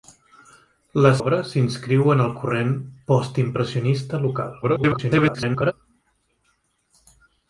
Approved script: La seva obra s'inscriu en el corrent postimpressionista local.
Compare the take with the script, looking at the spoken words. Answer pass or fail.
fail